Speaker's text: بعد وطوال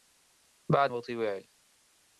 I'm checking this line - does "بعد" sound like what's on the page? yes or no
yes